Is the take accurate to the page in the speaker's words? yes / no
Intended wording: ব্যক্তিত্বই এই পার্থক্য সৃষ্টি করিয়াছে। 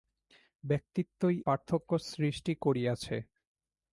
no